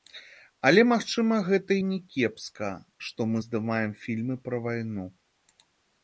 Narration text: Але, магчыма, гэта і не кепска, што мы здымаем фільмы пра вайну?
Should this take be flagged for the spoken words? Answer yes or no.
no